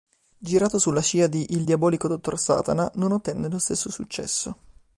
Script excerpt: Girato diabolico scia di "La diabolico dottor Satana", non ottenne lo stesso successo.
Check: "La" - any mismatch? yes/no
yes